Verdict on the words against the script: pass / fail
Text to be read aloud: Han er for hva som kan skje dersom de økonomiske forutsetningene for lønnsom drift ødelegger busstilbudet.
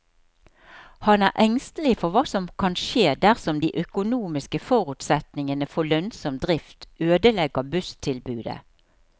fail